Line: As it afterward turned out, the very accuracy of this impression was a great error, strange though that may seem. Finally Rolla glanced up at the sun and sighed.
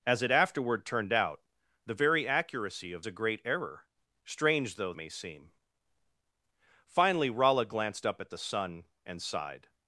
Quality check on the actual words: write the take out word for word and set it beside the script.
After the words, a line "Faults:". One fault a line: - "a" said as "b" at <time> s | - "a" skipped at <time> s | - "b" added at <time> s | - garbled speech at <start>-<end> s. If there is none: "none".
As it afterward turned out, the very accuracy of a great error, strange though may seem. Finally Rolla glanced up at the sun and sighed.
Faults:
- "this impression was" skipped at 3.0 s
- "that" skipped at 4.9 s